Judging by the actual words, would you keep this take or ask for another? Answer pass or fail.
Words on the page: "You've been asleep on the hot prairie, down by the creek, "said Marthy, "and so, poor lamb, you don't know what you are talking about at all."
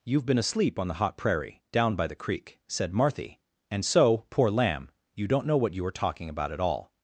pass